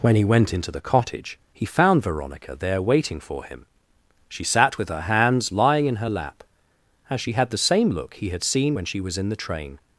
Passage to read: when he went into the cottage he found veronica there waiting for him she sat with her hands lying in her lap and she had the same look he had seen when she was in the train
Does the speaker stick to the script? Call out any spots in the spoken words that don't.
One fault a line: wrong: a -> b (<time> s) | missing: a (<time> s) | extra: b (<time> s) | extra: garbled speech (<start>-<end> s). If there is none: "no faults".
wrong: and -> as (7.1 s)